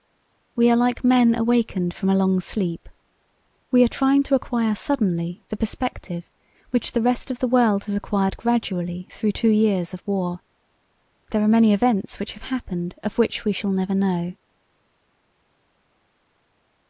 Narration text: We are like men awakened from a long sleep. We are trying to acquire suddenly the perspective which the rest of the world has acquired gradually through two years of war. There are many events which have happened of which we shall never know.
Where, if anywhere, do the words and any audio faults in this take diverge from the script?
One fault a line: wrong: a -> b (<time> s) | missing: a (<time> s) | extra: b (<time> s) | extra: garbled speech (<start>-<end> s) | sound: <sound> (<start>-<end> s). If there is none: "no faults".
no faults